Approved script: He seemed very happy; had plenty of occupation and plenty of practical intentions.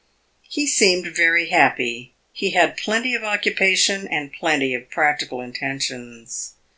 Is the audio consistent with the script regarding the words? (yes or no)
no